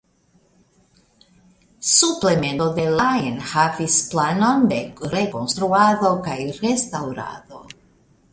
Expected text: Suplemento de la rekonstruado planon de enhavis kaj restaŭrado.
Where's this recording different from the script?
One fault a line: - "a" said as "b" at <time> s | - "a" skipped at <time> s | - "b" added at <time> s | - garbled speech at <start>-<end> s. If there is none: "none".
- "rekonstruado" said as "enhavis" at 3.3 s
- "enhavis" said as "rekonstruado" at 5.2 s